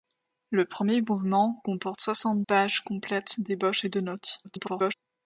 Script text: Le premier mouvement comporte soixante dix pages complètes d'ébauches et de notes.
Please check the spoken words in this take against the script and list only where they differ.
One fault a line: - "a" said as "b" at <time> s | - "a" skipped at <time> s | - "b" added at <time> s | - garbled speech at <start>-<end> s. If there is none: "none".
- "dix" skipped at 2.4 s
- garbled speech at 4.4-4.9 s